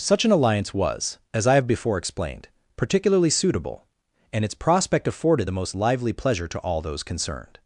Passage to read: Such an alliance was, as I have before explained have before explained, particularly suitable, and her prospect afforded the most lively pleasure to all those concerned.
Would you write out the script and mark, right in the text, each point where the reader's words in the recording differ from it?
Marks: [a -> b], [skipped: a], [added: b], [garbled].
Such an alliance was, as I have before explained [skipped: have before explained,] particularly suitable, and [her -> its] prospect afforded the most lively pleasure to all those concerned.